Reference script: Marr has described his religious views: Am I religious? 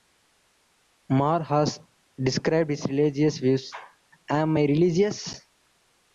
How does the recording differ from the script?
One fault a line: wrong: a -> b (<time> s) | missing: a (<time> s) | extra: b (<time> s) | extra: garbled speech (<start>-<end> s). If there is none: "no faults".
no faults